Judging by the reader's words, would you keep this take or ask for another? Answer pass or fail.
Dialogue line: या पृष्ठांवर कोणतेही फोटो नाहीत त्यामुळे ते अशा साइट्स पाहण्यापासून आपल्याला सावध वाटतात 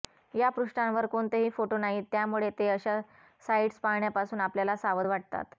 pass